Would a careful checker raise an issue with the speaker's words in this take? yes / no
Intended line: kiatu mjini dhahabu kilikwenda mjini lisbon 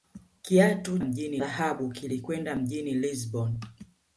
no